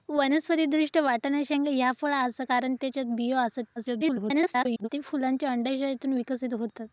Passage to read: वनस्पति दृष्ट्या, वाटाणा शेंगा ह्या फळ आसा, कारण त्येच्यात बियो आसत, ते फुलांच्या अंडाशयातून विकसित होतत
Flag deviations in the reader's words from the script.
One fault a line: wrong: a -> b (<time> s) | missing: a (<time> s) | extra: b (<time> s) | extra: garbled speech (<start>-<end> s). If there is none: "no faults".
extra: garbled speech (3.8-4.9 s)